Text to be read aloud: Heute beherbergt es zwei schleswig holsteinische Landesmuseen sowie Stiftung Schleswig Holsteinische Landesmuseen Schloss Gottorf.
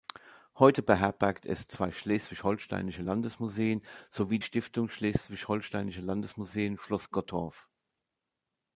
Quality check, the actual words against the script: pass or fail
pass